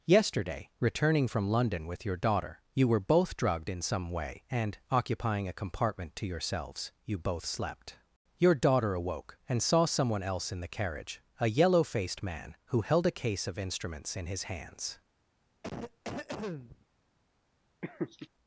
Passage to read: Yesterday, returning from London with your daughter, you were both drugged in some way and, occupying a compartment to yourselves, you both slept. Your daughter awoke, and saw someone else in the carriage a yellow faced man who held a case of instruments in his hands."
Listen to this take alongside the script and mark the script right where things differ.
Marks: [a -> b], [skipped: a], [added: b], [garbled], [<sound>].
Yesterday, returning from London with your daughter, you were both drugged in some way and, occupying a compartment to yourselves, you both slept. Your daughter awoke, and saw someone else in the carriage a yellow faced man who held a case of instruments in his hands." [cough] [laugh]